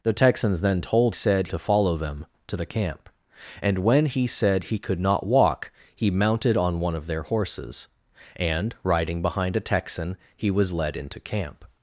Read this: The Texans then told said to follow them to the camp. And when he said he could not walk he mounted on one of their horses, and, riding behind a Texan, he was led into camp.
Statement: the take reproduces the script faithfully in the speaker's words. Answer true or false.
true